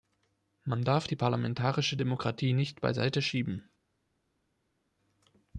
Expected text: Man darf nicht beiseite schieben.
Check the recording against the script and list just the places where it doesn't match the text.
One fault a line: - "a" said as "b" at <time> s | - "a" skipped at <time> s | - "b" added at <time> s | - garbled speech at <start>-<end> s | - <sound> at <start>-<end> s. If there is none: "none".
- "die parlamentarische Demokratie" added at 1.0 s